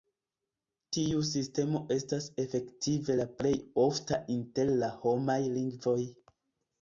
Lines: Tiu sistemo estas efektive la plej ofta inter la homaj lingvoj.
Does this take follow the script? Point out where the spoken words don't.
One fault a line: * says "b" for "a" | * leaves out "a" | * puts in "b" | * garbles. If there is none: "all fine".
all fine